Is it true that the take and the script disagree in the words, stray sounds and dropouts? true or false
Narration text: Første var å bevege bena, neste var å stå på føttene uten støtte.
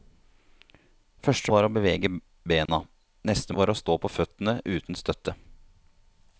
true